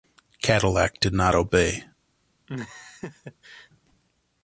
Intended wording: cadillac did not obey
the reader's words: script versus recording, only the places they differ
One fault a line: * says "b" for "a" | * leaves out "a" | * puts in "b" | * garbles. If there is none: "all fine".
all fine